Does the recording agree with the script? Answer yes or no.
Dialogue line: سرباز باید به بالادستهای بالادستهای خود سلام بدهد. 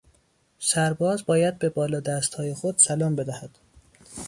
no